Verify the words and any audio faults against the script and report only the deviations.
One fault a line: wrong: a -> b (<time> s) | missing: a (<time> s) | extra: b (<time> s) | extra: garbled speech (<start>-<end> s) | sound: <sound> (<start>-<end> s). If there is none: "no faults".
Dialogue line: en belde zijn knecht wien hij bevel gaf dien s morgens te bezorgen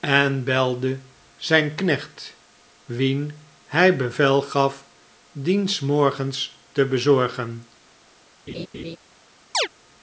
sound: laugh (8.5-9.0 s)
sound: chirp (9.5-9.7 s)